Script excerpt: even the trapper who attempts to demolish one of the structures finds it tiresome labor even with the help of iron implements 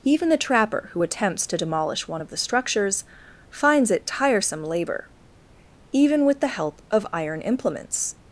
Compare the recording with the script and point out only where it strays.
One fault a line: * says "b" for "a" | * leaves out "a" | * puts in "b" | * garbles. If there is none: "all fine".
all fine